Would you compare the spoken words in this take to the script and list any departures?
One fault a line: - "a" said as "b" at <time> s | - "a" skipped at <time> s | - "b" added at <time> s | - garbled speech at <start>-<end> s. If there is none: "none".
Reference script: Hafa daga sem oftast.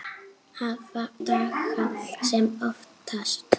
none